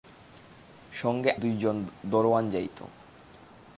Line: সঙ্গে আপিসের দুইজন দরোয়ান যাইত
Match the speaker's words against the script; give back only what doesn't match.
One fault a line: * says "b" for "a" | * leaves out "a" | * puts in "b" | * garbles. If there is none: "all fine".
* leaves out "আপিসের"